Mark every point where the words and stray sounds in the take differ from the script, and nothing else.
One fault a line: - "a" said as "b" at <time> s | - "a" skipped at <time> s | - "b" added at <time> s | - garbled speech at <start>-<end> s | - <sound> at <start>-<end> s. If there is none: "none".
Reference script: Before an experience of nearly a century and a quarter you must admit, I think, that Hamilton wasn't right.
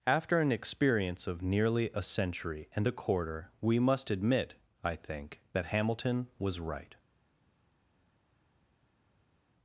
- "Before" said as "After" at 0.1 s
- "you" said as "we" at 3.6 s
- "wasn't" said as "was" at 6.4 s